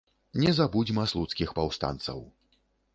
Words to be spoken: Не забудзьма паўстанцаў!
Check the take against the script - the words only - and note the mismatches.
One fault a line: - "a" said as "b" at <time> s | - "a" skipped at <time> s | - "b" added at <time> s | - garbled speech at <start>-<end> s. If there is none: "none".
- "слуцкіх" added at 1.1 s